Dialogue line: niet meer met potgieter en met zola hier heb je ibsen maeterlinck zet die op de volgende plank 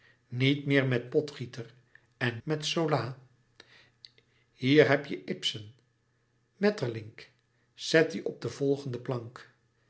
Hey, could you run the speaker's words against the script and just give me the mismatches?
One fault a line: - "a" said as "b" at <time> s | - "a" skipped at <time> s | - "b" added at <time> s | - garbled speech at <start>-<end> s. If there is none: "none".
none